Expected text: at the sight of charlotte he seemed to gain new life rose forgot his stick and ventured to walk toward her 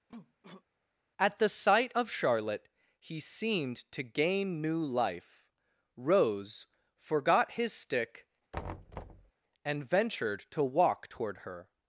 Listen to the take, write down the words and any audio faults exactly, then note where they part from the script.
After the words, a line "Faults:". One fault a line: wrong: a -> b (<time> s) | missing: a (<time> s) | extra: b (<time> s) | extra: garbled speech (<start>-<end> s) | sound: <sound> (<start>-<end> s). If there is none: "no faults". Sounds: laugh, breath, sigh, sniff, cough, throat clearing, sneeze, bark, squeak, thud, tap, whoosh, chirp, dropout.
at the sight of charlotte he seemed to gain new life rose forgot his stick and ventured to walk toward her
Faults:
sound: cough (0.1-0.6 s)
sound: thud (8.5-9.3 s)